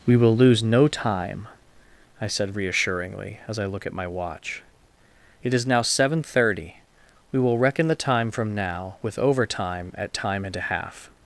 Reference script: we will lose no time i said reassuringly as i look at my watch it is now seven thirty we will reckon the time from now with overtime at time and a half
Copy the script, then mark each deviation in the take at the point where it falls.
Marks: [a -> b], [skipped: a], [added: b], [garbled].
we will lose no time i said reassuringly as i look at my watch it is now seven thirty we will reckon the time from now with overtime at time and a half